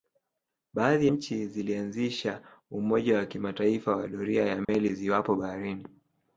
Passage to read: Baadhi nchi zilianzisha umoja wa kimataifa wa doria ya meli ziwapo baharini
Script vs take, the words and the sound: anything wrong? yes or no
yes